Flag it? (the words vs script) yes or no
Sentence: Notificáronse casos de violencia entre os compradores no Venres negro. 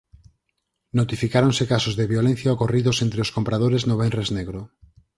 yes